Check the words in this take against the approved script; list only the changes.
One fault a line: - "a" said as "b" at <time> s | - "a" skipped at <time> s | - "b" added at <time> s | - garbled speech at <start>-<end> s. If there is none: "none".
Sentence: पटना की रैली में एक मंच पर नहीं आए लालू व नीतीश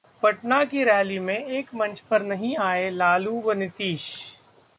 none